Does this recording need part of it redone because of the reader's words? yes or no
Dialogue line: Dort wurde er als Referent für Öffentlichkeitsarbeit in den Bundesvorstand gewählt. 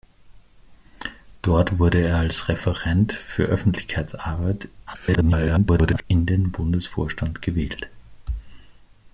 yes